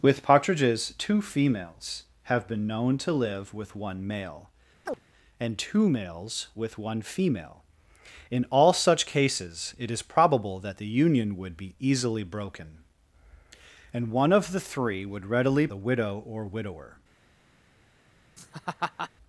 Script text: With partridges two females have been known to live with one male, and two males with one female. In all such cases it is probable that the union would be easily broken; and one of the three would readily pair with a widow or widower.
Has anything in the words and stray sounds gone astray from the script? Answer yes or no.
yes